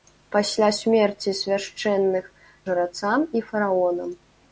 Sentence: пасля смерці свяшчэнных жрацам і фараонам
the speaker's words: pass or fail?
pass